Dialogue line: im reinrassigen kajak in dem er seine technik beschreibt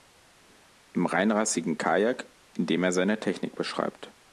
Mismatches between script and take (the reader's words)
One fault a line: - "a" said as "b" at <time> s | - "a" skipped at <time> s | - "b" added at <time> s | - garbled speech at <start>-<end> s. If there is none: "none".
none